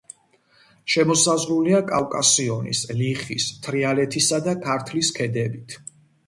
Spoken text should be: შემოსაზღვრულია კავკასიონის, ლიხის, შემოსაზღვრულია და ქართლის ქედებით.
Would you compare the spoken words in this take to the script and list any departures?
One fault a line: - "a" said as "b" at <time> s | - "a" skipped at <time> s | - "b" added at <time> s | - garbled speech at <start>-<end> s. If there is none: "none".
- "შემოსაზღვრულია" said as "თრიალეთისა" at 3.7 s